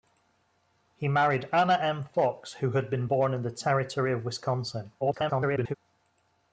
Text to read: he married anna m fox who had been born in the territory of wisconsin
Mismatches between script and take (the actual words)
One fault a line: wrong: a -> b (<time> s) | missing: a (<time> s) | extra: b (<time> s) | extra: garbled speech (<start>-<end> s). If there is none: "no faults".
extra: garbled speech (5.0-5.7 s)